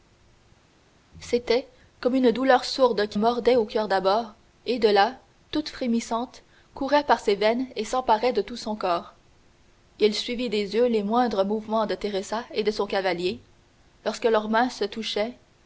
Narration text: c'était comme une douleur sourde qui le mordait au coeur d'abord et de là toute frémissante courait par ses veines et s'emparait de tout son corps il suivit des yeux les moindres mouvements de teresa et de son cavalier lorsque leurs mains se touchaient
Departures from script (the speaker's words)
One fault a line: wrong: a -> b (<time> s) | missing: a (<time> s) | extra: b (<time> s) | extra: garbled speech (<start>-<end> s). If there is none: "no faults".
missing: le (3.2 s)